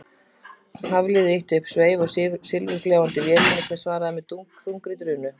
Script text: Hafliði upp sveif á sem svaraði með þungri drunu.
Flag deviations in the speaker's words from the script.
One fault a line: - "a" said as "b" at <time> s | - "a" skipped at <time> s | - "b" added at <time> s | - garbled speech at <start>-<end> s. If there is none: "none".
- "ýtti" added at 1.4 s
- "silfurgljáandi vélinni" added at 2.1 s